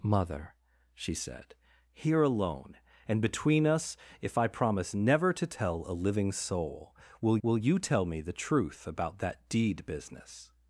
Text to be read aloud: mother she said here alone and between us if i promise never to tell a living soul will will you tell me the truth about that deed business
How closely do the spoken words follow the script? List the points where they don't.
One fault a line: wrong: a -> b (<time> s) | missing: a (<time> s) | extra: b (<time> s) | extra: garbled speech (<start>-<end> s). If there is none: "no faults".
no faults